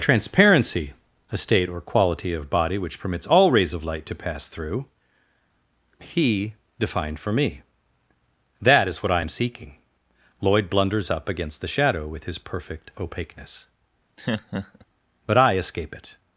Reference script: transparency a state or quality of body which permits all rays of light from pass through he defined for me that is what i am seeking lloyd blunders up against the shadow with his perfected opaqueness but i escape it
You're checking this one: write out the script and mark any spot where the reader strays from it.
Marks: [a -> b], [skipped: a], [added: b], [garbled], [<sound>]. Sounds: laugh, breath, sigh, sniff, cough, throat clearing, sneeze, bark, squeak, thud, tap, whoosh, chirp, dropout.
transparency a state or quality of body which permits all rays of light [from -> to] pass through he defined for me that is what i am seeking lloyd blunders up against the shadow with his [perfected -> perfect] opaqueness [laugh] but i escape it